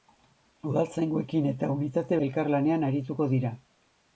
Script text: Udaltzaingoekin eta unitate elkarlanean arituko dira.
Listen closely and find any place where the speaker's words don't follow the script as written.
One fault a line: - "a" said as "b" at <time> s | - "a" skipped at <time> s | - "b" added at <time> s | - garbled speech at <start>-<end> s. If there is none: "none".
none